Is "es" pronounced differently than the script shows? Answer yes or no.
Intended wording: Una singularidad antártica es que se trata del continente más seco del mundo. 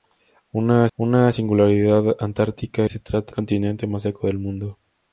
yes